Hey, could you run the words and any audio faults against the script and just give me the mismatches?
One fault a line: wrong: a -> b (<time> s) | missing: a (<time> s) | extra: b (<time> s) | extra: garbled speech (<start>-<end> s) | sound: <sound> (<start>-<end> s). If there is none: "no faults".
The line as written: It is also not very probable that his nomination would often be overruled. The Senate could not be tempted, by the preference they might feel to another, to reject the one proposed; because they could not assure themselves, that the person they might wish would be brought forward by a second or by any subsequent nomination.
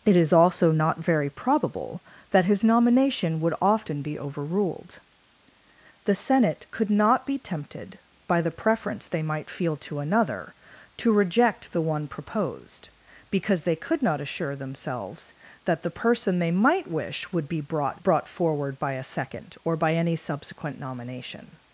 extra: brought (18.0 s)